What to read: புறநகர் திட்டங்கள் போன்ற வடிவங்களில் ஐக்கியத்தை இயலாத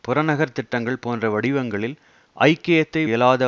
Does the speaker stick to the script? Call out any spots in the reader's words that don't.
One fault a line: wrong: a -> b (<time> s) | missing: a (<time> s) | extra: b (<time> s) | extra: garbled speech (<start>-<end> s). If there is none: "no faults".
no faults